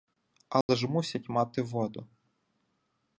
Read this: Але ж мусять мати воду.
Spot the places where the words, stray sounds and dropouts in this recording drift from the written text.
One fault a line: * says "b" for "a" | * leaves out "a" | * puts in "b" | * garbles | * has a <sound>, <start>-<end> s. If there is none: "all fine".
* has a dropout, 0.6-0.7 s